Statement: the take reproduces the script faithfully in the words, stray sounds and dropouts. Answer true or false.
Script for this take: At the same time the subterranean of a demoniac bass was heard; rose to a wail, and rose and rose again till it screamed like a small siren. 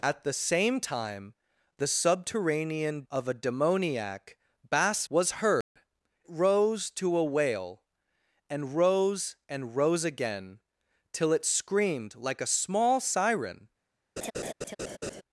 false